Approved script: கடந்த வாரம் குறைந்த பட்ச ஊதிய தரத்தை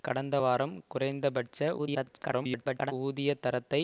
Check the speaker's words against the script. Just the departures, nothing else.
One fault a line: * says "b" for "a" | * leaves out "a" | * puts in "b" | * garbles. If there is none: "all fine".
* garbles